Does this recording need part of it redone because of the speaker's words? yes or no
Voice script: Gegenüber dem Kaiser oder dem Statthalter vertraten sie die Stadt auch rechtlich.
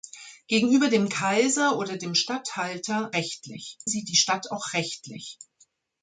yes